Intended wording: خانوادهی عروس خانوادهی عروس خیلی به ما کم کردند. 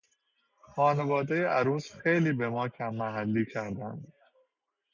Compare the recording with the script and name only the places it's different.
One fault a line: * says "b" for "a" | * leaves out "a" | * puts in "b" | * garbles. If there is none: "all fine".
* leaves out "خانوادهی عروس"
* puts in "محلی"